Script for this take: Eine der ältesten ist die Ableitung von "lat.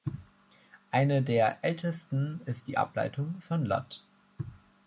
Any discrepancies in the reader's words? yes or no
no